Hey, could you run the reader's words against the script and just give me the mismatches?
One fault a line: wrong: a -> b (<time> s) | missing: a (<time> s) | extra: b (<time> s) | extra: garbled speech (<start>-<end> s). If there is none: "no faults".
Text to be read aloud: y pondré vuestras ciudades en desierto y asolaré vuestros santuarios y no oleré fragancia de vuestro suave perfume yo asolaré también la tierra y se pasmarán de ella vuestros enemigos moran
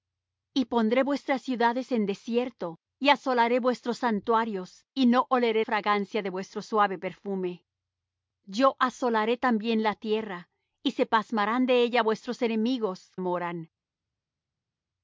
no faults